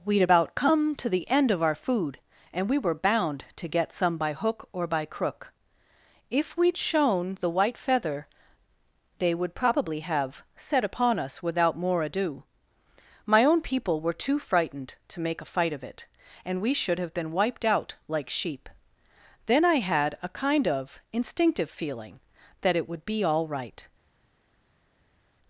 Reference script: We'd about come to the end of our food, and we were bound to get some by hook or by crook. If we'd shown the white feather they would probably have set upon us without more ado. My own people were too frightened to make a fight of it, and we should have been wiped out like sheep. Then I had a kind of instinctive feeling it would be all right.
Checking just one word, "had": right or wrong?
right